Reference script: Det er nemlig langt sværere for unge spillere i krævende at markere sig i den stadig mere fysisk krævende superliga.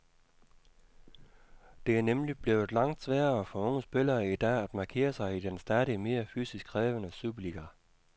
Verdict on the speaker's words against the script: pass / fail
fail